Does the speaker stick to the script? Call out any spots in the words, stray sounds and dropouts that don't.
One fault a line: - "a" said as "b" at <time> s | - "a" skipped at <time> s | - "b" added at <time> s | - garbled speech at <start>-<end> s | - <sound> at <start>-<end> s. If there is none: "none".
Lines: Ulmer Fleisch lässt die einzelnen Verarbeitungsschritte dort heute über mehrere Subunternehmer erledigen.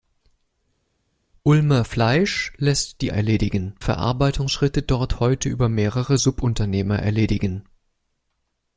- "einzelnen" said as "erledigen" at 3.1 s